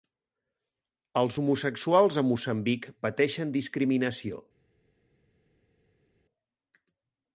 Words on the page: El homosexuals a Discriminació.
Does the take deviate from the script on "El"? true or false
true